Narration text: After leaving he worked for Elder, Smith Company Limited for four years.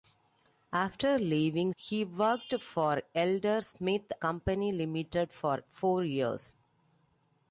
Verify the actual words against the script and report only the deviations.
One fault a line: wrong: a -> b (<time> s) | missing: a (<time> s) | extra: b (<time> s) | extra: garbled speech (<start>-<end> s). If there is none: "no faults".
no faults